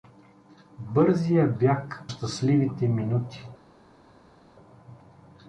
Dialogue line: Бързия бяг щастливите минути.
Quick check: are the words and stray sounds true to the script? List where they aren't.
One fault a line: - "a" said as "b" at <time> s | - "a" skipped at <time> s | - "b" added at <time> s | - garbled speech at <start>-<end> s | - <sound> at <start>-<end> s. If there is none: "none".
none